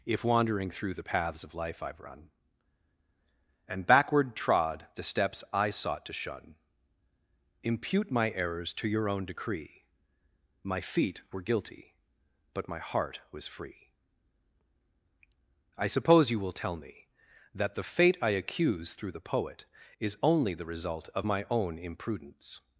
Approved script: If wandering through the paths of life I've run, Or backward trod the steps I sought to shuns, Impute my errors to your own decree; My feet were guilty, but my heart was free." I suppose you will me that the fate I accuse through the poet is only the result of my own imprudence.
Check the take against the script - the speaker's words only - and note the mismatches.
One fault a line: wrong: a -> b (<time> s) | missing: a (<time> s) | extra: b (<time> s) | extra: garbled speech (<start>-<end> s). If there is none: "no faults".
wrong: Or -> And (3.7 s)
wrong: shuns -> shun (6.1 s)
extra: tell (16.5 s)